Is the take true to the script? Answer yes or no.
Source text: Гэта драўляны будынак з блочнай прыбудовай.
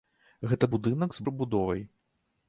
no